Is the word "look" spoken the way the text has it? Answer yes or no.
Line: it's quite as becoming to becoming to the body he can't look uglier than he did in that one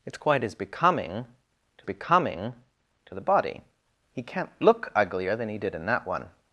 yes